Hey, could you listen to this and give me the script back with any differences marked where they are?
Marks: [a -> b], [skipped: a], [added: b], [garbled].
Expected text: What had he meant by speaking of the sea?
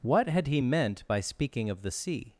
What had he meant by speaking of the sea?